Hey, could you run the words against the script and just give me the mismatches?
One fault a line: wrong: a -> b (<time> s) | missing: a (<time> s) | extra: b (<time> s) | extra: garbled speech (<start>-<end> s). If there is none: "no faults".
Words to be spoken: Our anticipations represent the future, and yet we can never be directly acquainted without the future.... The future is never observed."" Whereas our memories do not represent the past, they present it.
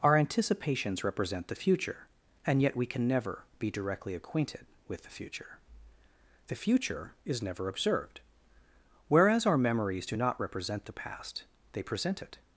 wrong: without -> with (4.9 s)